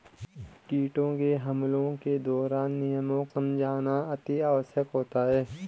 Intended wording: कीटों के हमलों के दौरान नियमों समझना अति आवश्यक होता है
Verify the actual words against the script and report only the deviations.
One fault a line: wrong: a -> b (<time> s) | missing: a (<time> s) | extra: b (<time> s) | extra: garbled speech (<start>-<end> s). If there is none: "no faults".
no faults